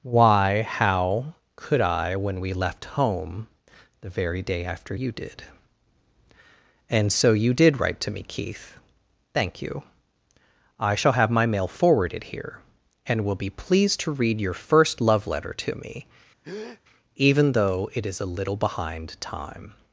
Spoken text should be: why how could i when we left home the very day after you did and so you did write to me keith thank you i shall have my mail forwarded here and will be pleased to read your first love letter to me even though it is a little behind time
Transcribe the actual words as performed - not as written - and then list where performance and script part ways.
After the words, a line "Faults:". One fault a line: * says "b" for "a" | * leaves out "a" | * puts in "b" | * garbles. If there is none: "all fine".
why how could i when we left home the very day after you did and so you did write to me keith thank you i shall have my mail forwarded here and will be pleased to read your first love letter to me even though it is a little behind time
Faults:
all fine